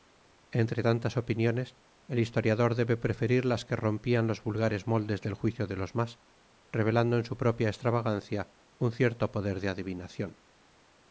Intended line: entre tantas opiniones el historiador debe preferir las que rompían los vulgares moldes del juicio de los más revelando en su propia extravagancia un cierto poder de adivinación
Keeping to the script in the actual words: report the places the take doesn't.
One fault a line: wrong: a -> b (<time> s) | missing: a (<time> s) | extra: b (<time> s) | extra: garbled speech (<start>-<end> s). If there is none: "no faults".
no faults